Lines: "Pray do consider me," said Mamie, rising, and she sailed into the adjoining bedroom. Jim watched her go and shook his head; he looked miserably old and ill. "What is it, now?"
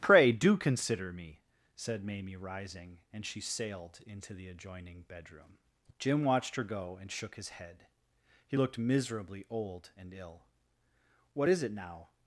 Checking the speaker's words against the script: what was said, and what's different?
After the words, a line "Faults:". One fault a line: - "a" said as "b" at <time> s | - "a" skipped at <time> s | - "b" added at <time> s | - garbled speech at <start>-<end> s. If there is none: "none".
"Pray do consider me," said Mamie, rising, and she sailed into the adjoining bedroom. Jim watched her go and shook his head; he looked miserably old and ill. "What is it, now?"
Faults:
none